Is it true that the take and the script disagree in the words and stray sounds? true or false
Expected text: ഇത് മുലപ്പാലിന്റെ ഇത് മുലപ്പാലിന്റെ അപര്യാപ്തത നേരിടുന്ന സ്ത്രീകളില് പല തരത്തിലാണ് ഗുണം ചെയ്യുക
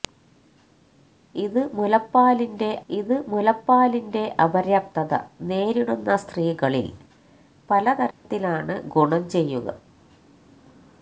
true